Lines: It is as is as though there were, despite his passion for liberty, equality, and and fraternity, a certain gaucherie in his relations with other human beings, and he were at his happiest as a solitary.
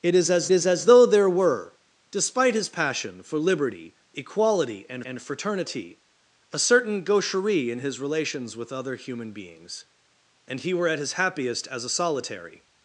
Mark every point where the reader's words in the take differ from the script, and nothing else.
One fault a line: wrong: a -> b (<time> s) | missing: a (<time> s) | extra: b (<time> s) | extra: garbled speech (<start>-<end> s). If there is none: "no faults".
no faults